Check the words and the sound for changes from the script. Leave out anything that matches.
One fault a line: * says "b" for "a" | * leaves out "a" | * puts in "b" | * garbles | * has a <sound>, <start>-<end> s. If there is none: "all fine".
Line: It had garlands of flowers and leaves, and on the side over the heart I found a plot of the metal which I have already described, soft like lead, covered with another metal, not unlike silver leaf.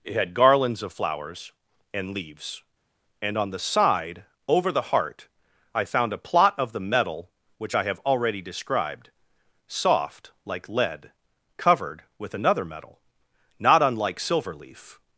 all fine